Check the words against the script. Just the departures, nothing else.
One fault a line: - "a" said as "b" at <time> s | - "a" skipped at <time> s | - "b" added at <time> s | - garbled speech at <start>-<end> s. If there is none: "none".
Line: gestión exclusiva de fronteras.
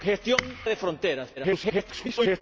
- "exclusiva" skipped at 0.4 s
- garbled speech at 1.4-2.4 s